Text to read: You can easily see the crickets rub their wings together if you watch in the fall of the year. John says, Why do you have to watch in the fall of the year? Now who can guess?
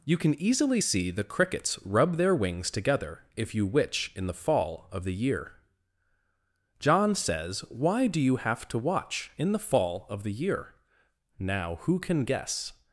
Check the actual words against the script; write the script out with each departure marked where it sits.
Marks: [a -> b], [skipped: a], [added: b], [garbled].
You can easily see the crickets rub their wings together if you [watch -> witch] in the fall of the year. John says, Why do you have to watch in the fall of the year? Now who can guess?